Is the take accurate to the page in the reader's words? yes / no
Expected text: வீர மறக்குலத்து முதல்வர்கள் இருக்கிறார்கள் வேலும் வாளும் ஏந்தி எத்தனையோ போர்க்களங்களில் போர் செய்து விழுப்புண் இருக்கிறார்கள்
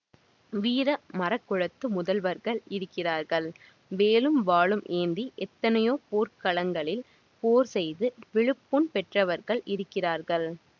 no